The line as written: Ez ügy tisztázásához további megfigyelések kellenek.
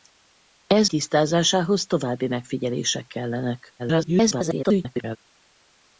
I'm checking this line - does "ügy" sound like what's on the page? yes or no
no